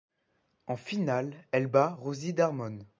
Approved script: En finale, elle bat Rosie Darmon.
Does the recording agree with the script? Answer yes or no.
yes